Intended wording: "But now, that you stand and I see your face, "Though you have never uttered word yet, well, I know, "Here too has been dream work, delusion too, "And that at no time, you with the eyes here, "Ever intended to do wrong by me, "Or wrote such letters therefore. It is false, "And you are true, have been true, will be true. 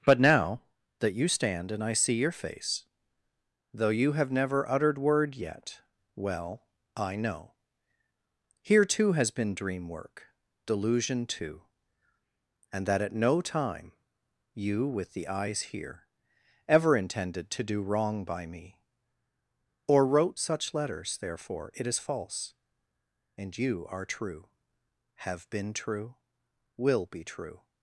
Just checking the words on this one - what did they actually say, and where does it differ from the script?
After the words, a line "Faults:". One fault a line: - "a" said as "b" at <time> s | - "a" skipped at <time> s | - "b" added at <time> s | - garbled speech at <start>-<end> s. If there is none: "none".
"But now, that you stand and I see your face, "Though you have never uttered word yet, well, I know, "Here too has been dream work, delusion too, "And that at no time, you with the eyes here, "Ever intended to do wrong by me, "Or wrote such letters therefore. It is false, "And you are true, have been true, will be true.
Faults:
none